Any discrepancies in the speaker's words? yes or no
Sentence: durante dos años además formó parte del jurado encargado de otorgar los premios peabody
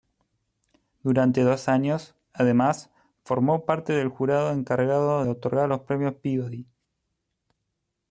yes